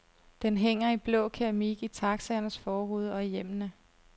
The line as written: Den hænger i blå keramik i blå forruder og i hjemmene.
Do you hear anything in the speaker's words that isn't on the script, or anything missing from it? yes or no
yes